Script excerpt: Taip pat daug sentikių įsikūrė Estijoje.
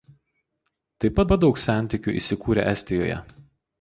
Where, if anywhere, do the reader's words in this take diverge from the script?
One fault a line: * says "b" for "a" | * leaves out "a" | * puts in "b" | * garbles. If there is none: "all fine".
* puts in "pat"